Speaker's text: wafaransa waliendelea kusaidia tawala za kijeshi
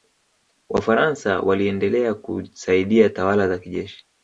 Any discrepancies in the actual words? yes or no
no